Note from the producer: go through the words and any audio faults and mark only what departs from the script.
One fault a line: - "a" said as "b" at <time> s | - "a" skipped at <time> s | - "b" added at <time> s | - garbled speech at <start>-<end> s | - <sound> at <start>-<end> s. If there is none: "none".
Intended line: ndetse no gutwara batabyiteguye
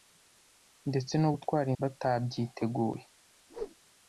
- whoosh at 3.5-3.8 s